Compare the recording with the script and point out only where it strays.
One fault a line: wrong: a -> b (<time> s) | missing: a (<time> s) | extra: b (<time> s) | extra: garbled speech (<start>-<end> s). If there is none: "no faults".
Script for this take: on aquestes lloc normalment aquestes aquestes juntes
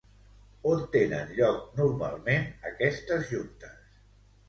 wrong: aquestes -> tenen (0.9 s)
missing: aquestes (3.3 s)